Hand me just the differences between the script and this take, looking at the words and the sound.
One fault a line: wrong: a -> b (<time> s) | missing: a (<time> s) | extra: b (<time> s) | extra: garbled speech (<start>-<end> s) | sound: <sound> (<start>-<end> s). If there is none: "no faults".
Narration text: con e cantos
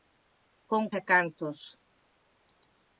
no faults